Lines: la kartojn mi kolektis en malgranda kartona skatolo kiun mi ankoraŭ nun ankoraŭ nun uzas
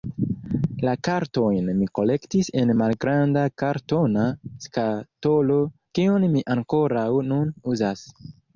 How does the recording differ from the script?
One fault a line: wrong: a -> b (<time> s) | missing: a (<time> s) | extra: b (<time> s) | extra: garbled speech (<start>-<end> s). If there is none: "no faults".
missing: ankoraŭ nun (7.6 s)